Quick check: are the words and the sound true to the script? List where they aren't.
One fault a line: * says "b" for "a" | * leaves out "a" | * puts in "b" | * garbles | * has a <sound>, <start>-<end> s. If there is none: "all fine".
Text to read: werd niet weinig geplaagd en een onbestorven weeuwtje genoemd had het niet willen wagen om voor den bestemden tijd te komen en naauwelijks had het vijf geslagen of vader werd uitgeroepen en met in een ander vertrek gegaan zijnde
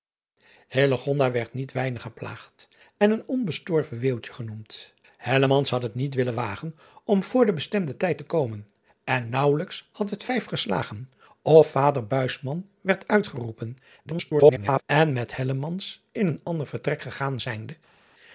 * garbles